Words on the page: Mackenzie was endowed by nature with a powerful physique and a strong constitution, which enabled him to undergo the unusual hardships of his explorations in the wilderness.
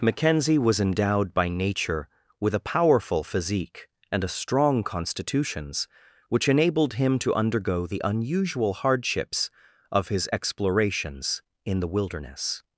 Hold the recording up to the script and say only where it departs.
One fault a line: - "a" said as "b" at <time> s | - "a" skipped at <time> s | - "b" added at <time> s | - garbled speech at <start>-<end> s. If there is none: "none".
- "constitution" said as "constitutions" at 4.8 s